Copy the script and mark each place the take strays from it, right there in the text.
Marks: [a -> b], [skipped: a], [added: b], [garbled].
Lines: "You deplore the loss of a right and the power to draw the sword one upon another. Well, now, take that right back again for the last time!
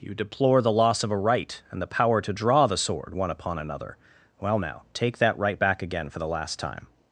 "You deplore the loss of a right and the power to draw the sword one upon another. Well, now, take that right back again for the last time!